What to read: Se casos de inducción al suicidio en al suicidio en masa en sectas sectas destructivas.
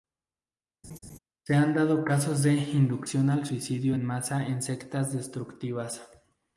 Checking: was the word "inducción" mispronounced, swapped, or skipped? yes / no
no